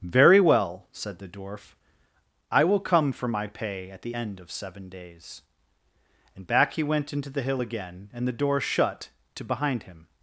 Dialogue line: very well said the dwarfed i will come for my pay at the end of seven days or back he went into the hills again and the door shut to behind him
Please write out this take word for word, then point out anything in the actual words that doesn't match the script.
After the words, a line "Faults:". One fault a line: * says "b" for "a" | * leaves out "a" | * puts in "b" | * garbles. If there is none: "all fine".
very well said the dwarf i will come for my pay at the end of seven days and back he went into the hill again and the door shut to behind him
Faults:
* says "dwarf" for "dwarfed"
* says "and" for "or"
* says "hill" for "hills"